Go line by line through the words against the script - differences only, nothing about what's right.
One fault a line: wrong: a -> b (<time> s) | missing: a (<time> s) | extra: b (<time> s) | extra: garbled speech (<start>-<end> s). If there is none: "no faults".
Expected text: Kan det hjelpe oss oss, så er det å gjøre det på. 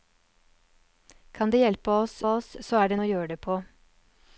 no faults